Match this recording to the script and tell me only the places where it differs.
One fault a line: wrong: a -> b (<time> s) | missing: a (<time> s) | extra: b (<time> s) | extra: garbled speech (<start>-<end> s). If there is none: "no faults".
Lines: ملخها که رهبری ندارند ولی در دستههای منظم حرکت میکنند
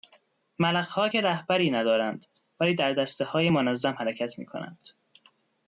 no faults